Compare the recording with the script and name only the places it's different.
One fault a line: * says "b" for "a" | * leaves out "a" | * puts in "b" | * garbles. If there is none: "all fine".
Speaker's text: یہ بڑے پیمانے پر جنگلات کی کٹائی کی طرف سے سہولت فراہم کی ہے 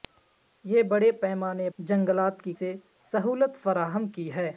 * leaves out "پر"
* leaves out "کٹائی کی طرف"